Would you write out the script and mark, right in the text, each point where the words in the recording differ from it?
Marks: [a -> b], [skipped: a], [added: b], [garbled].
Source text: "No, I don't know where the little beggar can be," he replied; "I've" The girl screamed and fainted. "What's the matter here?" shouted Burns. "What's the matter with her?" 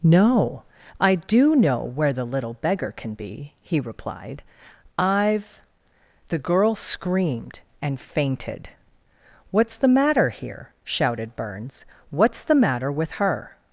"No, I [don't -> do] know where the little beggar can be," he replied; "I've" The girl screamed and fainted. "What's the matter here?" shouted Burns. "What's the matter with her?"